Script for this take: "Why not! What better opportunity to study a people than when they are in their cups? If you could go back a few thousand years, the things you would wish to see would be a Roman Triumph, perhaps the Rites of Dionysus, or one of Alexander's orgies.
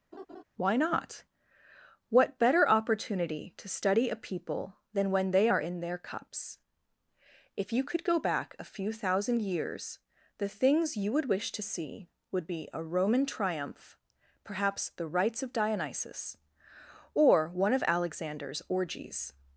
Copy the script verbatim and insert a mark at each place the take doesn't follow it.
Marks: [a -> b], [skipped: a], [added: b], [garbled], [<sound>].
[laugh] "Why not! What better opportunity to study a people than when they are in their cups? If you could go back a few thousand years, the things you would wish to see would be a Roman Triumph, perhaps the Rites of Dionysus, or one of Alexander's orgies.